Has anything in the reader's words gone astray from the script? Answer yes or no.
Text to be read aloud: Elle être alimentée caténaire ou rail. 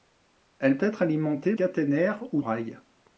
no